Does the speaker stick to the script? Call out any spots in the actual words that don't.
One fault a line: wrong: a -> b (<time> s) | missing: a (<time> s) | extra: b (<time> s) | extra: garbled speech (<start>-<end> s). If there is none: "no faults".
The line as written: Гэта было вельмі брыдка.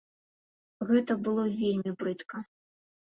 no faults